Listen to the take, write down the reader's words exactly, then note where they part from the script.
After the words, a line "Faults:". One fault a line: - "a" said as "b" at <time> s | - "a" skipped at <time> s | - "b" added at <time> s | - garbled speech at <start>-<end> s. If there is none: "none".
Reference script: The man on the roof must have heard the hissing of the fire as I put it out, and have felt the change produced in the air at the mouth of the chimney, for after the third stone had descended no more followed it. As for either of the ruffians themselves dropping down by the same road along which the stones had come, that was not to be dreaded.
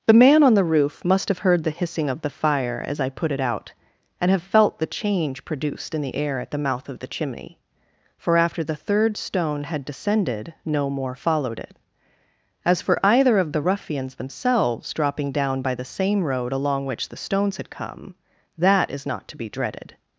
The man on the roof must have heard the hissing of the fire as I put it out, and have felt the change produced in the air at the mouth of the chimney, for after the third stone had descended no more followed it. As for either of the ruffians themselves dropping down by the same road along which the stones had come, that is not to be dreaded.
Faults:
- "was" said as "is" at 18.9 s